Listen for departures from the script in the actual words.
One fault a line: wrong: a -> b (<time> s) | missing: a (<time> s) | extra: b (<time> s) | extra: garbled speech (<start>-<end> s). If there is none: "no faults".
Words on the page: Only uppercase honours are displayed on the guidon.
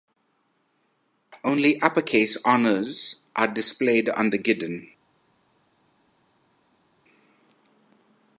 no faults